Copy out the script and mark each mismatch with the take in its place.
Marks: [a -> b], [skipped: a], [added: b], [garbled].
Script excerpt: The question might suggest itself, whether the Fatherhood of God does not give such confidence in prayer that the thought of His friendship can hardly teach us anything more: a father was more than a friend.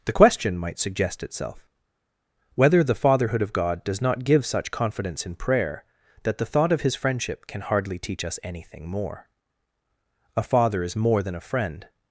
The question might suggest itself, whether the Fatherhood of God does not give such confidence in prayer that the thought of His friendship can hardly teach us anything more: a father [was -> is] more than a friend.